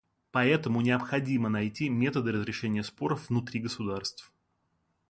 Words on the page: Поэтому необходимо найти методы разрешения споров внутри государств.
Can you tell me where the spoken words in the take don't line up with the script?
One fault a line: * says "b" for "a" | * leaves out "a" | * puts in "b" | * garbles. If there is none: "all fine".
all fine